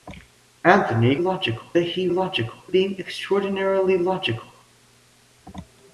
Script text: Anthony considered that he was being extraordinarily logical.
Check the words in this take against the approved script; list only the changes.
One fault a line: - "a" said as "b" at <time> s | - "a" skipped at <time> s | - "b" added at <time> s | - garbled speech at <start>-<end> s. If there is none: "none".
- "considered" said as "logical" at 1.2 s
- "was" said as "logical" at 2.1 s